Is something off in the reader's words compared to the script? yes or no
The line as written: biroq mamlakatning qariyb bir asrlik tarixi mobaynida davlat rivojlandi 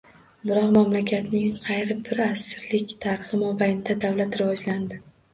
no